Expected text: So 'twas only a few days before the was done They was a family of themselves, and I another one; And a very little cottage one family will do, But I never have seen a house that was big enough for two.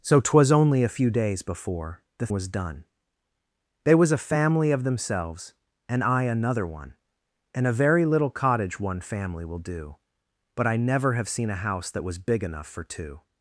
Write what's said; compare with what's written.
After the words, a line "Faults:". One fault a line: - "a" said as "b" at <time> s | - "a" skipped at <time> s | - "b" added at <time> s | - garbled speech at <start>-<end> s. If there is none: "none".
So 'twas only a few days before the was done They was a family of themselves, and I another one; And a very little cottage one family will do, But I never have seen a house that was big enough for two.
Faults:
none